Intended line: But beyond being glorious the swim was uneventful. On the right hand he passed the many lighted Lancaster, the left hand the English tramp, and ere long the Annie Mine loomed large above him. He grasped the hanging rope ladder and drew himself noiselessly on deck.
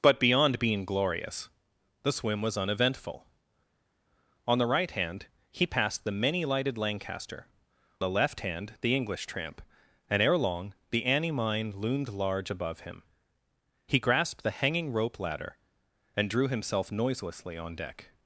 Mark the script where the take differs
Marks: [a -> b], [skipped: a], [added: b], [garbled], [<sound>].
But beyond being glorious the swim was uneventful. On the right hand he passed the many lighted Lancaster, the left hand the English tramp, and ere long the Annie Mine loomed large above him. He grasped the hanging rope ladder and drew himself noiselessly on deck.